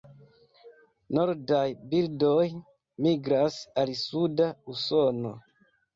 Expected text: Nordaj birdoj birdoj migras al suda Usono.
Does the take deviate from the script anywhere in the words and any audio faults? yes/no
yes